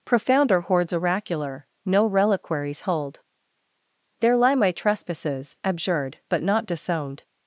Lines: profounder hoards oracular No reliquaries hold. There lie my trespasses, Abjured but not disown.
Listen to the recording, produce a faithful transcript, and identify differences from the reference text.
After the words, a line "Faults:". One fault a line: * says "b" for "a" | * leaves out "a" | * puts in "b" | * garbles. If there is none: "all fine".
profounder hoards oracular No reliquaries hold. There lie my trespasses, Abjured but not disowned.
Faults:
* says "disowned" for "disown"